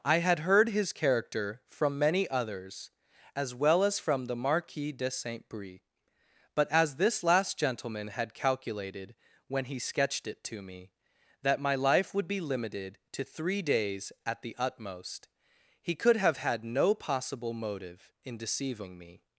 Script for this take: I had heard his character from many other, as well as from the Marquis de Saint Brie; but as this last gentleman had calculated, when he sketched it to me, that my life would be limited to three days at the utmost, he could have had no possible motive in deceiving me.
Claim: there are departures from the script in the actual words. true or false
true